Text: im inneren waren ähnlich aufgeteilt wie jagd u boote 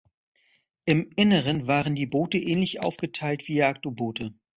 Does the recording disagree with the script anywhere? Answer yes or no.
yes